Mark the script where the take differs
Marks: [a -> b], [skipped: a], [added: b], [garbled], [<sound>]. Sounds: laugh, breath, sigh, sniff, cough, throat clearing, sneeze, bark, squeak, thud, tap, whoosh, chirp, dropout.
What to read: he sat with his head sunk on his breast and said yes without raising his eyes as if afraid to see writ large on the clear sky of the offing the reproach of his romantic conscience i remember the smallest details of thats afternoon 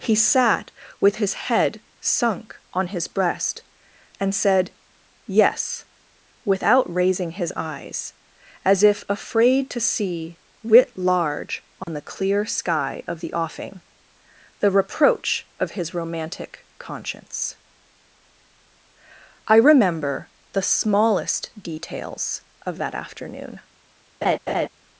he sat with his head sunk on his breast and said yes without raising his eyes as if afraid to see writ large on [dropout] the clear sky of the offing the reproach of his romantic conscience i remember the smallest details of [thats -> that] afternoon [laugh]